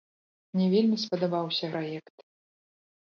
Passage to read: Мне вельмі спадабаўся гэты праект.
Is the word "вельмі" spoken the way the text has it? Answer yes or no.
yes